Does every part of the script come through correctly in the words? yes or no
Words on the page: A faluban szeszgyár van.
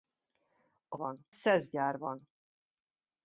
no